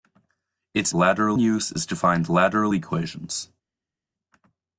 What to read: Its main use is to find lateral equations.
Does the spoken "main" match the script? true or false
false